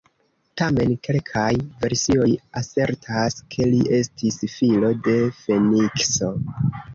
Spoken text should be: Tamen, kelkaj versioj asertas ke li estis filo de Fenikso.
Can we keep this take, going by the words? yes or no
yes